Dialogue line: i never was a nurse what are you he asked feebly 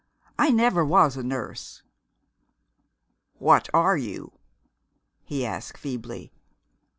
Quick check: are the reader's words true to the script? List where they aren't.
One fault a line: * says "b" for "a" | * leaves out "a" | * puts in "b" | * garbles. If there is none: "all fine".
all fine